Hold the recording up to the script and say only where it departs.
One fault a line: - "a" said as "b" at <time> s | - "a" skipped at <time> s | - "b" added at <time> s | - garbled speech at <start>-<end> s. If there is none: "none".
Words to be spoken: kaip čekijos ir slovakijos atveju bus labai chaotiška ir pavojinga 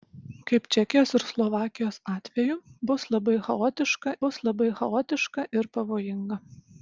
- "bus labai chaotiška" added at 4.3 s